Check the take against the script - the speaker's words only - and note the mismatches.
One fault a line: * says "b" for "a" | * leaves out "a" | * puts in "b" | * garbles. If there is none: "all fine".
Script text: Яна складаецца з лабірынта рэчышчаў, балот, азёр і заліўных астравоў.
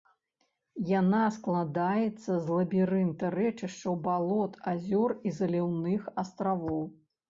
all fine